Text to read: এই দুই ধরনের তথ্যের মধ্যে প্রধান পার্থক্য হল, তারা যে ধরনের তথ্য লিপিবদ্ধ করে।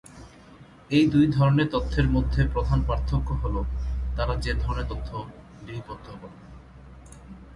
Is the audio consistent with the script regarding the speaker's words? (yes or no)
yes